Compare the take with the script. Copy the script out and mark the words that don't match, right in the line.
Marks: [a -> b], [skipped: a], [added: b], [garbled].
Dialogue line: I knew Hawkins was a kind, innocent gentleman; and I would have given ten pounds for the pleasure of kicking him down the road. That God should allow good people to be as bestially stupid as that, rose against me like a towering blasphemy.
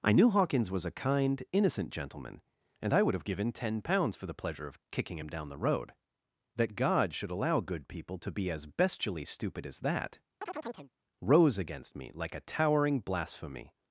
I knew Hawkins was a kind, innocent gentleman; and I would have given ten pounds for the pleasure of kicking him down the road. That God should allow good people to be as bestially stupid as that, rose against me like a towering blasphemy.